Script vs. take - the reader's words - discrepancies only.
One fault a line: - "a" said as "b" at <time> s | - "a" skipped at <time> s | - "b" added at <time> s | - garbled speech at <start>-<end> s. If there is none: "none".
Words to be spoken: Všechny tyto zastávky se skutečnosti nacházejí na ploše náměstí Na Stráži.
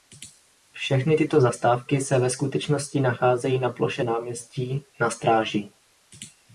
- "ve" added at 2.2 s